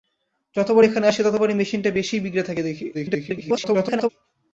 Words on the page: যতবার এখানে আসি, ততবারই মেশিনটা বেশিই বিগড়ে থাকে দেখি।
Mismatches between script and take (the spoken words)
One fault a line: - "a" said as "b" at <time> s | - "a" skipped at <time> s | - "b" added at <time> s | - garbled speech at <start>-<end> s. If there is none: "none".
- garbled speech at 2.9-4.1 s